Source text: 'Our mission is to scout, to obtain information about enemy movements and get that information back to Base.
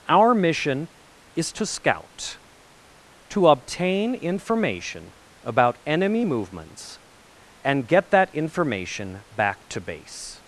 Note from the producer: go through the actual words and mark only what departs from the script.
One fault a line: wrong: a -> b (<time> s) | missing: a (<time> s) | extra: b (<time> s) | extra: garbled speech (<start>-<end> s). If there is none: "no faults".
no faults